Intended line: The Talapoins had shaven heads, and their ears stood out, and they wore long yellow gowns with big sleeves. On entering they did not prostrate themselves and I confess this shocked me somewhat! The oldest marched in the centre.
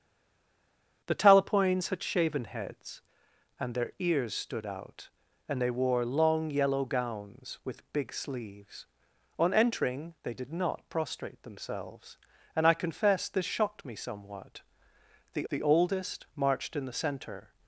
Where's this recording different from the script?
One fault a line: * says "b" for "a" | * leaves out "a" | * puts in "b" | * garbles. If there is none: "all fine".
* puts in "the"